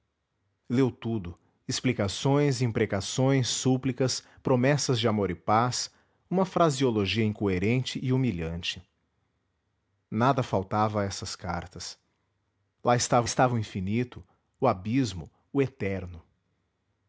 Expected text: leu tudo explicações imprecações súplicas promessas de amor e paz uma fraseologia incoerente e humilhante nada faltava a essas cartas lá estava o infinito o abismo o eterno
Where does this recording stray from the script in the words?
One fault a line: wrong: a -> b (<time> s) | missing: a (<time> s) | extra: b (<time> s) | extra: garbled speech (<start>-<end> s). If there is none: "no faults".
extra: estava (13.2 s)